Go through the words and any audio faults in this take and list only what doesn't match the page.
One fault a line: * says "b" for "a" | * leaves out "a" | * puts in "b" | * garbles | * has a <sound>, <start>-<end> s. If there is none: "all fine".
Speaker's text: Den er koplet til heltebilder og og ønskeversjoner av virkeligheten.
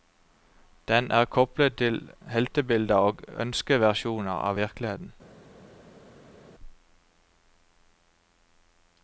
* leaves out "og"